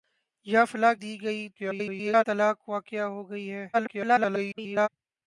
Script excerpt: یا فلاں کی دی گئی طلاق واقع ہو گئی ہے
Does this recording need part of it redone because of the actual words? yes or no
yes